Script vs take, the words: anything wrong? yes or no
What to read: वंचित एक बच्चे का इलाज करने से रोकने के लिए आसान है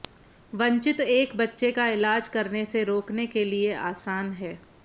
no